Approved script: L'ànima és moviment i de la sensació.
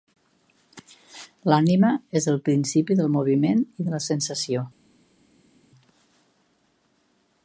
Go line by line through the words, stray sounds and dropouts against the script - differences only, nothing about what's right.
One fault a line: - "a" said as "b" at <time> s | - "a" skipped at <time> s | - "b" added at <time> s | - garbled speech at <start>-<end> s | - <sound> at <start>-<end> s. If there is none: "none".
- "el principi del" added at 2.3 s